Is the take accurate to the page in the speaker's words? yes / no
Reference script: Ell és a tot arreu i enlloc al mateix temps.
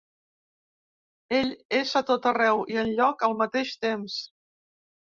yes